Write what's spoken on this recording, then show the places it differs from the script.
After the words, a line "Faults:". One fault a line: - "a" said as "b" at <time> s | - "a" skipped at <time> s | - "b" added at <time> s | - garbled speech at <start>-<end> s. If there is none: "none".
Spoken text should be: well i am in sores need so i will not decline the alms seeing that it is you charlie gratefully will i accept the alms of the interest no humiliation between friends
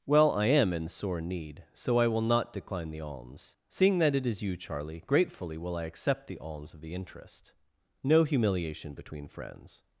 well i am in sore need so i will not decline the alms seeing that it is you charlie gratefully will i accept the alms of the interest no humiliation between friends
Faults:
- "sores" said as "sore" at 0.9 s